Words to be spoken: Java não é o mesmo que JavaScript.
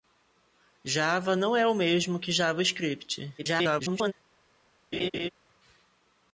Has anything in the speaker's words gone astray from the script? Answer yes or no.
yes